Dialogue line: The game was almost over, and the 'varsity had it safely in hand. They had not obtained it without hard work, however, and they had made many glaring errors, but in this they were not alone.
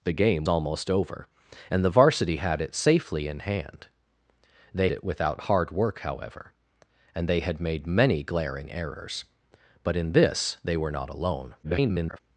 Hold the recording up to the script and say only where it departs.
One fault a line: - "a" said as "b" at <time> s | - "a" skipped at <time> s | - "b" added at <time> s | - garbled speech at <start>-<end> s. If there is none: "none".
- "was" skipped at 0.5 s
- "had not obtained" skipped at 4.9 s
- garbled speech at 11.6-12.2 s